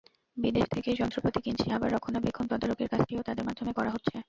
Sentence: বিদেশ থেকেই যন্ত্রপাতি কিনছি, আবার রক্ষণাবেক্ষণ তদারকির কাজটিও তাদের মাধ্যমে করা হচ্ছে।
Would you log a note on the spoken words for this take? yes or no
no